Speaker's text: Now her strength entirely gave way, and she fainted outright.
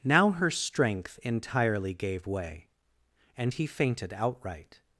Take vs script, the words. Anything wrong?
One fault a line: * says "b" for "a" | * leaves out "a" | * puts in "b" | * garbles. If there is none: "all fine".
* says "he" for "she"